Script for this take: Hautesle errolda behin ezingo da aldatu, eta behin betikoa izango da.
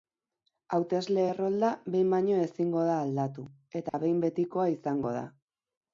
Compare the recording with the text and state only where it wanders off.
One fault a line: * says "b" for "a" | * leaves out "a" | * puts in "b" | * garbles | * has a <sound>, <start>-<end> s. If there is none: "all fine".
* puts in "baino"
* has a dropout, 3.9-3.9 s